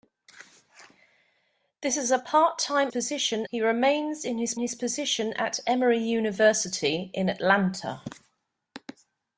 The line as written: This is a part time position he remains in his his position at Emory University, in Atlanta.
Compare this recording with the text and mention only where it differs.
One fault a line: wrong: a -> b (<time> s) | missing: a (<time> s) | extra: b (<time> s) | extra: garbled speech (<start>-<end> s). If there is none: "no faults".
no faults